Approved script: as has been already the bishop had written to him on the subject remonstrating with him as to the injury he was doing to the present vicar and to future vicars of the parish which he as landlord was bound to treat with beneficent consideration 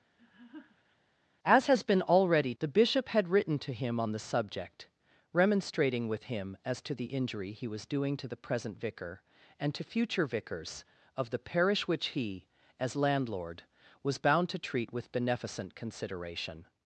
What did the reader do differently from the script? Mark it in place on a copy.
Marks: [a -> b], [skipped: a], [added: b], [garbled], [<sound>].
[laugh] as has been already the bishop had written to him on the subject remonstrating with him as to the injury he was doing to the present vicar and to future vicars of the parish which he as landlord was bound to treat with beneficent consideration